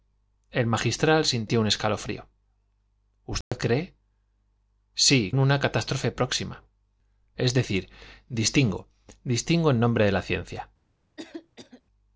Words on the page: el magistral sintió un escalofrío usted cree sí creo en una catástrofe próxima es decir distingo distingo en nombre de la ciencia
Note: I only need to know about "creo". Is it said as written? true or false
false